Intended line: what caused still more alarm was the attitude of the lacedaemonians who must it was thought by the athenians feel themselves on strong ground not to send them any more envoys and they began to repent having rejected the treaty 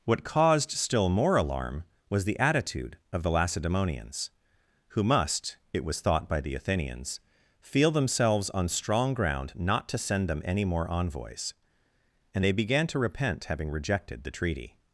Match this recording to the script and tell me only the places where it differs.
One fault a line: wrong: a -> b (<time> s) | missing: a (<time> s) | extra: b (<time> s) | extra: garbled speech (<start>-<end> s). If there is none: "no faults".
no faults